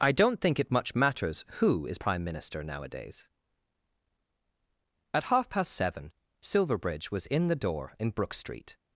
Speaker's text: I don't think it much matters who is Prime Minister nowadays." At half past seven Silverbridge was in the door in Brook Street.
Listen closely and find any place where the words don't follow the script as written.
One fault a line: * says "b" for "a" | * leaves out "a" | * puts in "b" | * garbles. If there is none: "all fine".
all fine